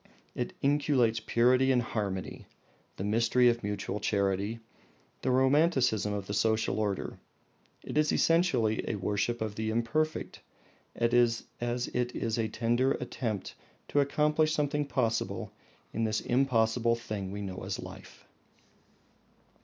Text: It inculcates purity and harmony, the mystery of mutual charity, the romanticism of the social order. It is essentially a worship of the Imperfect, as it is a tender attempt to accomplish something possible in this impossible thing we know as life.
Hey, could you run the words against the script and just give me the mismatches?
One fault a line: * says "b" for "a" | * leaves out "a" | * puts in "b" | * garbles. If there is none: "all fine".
all fine